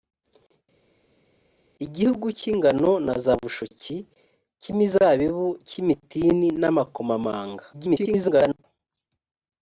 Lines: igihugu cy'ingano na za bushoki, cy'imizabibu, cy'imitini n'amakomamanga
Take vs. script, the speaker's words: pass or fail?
fail